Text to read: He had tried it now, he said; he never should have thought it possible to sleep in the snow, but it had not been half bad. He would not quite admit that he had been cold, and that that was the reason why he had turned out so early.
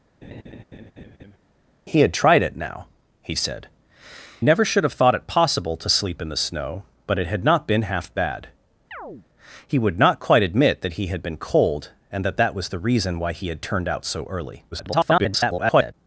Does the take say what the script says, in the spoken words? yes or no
no